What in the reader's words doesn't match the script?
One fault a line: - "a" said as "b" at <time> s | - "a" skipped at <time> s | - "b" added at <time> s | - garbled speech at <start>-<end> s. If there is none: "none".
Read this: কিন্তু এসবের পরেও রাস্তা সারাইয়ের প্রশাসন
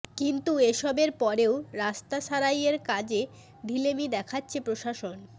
- "কাজে ঢিলেমি দেখাচ্ছে" added at 2.9 s